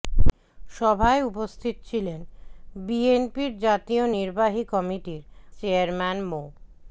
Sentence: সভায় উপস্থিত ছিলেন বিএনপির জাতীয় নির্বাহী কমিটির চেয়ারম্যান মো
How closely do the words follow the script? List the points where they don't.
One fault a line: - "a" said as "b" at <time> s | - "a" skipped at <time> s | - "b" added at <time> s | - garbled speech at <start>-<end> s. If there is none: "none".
none